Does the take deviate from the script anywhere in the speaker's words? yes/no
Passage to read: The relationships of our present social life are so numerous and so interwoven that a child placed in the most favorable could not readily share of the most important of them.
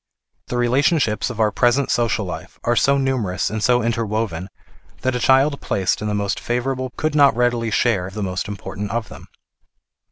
no